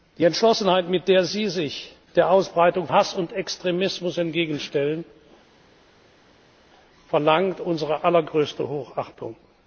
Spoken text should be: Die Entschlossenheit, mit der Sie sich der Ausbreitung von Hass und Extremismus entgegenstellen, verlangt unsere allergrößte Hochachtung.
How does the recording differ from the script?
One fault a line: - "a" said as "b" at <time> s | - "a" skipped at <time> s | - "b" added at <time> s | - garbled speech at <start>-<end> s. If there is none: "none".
- "von" skipped at 2.9 s